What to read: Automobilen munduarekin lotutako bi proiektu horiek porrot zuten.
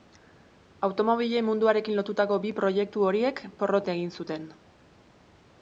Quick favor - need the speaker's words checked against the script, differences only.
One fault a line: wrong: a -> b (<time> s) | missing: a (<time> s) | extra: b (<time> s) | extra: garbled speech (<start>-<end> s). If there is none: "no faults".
extra: egin (4.0 s)